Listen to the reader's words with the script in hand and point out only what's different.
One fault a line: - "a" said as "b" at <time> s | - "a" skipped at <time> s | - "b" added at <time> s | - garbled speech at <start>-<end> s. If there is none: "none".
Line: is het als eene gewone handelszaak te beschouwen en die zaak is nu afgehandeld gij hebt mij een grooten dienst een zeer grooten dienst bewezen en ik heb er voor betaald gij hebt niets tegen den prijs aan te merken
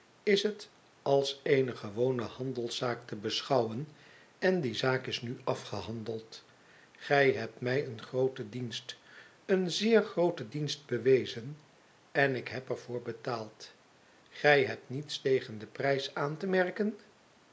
none